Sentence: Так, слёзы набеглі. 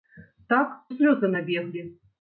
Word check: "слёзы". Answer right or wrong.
right